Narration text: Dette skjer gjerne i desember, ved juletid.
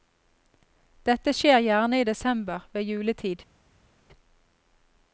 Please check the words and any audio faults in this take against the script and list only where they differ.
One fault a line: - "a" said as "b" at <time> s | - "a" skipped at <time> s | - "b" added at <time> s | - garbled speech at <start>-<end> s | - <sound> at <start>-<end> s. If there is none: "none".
none